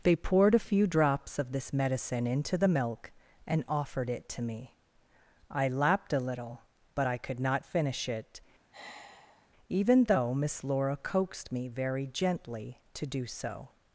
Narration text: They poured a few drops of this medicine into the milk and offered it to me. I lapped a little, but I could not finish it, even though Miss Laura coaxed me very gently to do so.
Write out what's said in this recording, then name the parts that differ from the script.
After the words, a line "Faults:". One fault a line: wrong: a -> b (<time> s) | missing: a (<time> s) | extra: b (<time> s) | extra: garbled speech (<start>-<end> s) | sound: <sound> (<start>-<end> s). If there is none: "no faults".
They poured a few drops of this medicine into the milk and offered it to me. I lapped a little, but I could not finish it, even though Miss Laura coaxed me very gently to do so.
Faults:
sound: sigh (8.7-9.5 s)